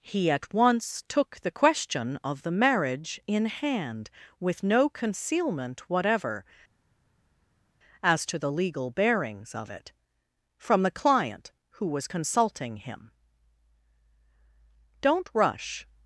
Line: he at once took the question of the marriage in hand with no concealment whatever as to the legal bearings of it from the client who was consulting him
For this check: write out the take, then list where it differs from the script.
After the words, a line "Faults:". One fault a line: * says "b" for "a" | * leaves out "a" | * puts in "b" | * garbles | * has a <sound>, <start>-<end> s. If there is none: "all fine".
he at once took the question of the marriage in hand with no concealment whatever as to the legal bearings of it from the client who was consulting him don't rush
Faults:
* puts in "don't rush"